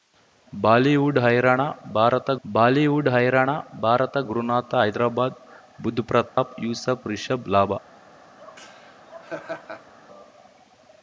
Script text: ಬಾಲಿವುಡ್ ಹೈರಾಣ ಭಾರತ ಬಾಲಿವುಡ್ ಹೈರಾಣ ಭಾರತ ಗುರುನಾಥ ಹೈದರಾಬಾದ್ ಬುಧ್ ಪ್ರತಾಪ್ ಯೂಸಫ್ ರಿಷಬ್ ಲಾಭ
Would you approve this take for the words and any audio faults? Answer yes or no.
no